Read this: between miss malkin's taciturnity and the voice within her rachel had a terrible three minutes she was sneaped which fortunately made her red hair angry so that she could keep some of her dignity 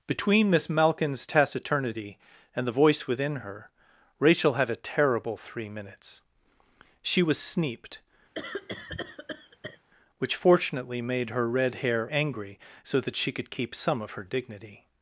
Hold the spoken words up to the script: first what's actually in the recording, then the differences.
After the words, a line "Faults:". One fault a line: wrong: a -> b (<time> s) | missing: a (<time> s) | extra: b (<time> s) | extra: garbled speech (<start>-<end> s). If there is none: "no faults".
between miss malkin's taciturnity and the voice within her rachel had a terrible three minutes she was sneaped which fortunately made her red hair angry so that she could keep some of her dignity
Faults:
no faults